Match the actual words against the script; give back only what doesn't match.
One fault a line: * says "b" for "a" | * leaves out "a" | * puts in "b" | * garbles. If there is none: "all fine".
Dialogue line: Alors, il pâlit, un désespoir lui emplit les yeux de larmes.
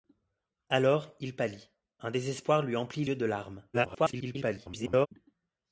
* leaves out "les"
* garbles